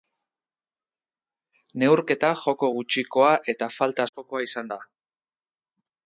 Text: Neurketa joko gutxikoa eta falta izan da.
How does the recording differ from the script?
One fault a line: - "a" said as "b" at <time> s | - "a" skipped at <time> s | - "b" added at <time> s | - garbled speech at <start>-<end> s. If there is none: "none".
- "askokoa" added at 4.1 s